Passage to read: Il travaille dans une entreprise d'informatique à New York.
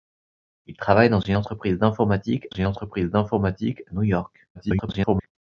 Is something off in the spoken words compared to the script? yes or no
yes